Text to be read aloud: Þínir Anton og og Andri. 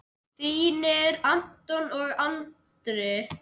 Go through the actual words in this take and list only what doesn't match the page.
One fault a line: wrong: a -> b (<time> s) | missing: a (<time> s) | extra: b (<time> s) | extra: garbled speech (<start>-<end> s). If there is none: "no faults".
missing: og (2.1 s)